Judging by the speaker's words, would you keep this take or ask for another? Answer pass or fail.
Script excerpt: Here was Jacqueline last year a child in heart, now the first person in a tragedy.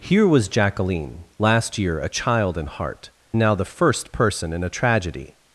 pass